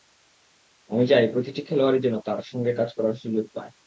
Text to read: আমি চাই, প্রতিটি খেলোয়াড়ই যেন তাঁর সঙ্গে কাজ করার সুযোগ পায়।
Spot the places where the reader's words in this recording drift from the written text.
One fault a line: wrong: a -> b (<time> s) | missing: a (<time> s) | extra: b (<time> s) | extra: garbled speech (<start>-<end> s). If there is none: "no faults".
no faults